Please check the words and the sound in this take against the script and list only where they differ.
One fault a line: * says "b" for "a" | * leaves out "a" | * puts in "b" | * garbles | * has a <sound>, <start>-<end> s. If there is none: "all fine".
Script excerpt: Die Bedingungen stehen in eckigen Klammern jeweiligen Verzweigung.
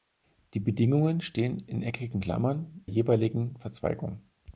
all fine